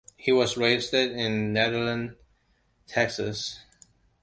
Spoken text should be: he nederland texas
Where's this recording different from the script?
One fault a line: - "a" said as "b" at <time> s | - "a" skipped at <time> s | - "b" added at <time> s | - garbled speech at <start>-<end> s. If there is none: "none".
- "was raised in" added at 0.3 s